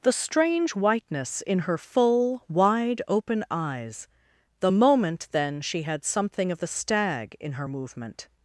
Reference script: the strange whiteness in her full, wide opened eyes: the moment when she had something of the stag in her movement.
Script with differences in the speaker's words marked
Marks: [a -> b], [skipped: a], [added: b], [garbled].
the strange whiteness in her full, wide [opened -> open] eyes: the moment [when -> then] she had something of the stag in her movement.